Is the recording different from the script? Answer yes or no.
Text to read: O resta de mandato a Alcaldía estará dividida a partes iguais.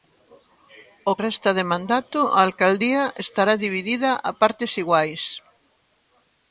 no